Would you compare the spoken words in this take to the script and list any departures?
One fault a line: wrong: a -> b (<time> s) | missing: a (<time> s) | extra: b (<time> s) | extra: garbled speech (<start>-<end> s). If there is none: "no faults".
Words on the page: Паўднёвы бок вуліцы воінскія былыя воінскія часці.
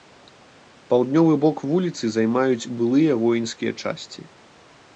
wrong: воінскія -> займаюць (2.2 s)